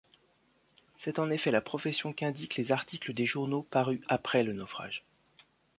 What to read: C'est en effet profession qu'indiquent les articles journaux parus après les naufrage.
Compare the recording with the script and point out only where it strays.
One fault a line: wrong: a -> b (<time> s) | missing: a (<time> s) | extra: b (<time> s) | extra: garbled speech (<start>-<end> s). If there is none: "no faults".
extra: la (1.5 s)
extra: des (3.1 s)
wrong: les -> le (4.4 s)